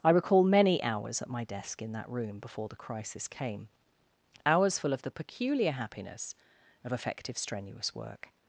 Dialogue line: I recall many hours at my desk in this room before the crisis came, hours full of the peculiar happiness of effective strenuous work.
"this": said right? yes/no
no